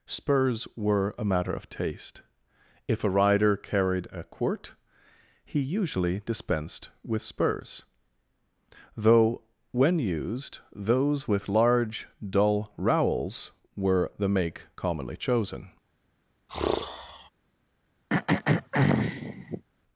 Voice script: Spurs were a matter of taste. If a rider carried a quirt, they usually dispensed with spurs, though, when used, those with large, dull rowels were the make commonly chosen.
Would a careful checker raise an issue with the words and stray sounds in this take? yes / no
yes